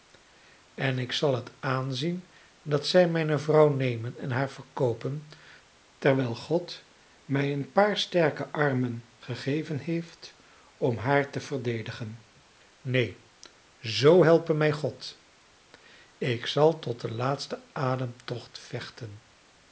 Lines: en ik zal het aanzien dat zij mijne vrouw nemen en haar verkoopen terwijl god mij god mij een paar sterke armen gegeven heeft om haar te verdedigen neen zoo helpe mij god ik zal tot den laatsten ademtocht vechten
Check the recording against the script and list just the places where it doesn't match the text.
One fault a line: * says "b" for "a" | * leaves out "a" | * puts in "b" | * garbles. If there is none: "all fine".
* leaves out "god mij"